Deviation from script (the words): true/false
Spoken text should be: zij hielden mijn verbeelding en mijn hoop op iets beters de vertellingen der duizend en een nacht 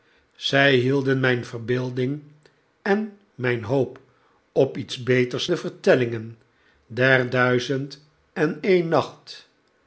false